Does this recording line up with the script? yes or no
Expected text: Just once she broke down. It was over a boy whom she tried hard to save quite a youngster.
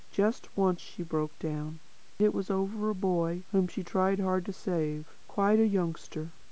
yes